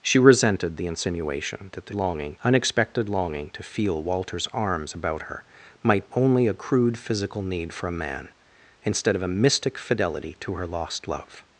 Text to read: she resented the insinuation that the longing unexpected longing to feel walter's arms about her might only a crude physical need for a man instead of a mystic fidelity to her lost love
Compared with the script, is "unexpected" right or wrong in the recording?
right